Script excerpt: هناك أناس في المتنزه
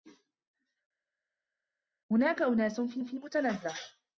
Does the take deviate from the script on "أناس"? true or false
false